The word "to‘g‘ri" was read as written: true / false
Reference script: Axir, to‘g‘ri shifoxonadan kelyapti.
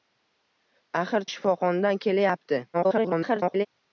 false